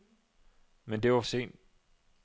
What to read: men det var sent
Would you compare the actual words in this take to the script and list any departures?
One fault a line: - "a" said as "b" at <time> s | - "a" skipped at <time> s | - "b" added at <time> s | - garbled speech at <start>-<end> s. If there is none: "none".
none